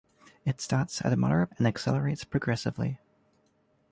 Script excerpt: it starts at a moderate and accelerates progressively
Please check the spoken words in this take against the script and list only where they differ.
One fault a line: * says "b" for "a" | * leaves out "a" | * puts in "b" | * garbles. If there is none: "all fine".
all fine